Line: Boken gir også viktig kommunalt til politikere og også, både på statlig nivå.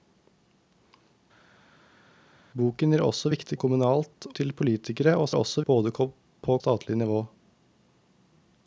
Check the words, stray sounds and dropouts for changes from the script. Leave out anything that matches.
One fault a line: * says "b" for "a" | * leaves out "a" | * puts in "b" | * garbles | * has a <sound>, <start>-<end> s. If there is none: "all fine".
all fine